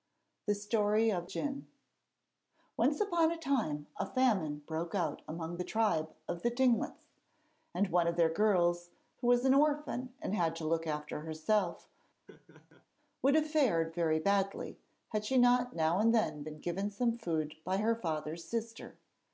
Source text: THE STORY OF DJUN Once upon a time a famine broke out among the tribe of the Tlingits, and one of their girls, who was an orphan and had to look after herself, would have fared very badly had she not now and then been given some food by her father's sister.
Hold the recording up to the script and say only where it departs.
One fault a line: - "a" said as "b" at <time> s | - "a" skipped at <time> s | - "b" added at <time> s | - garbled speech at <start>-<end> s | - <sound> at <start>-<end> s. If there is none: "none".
- laugh at 12.3-12.9 s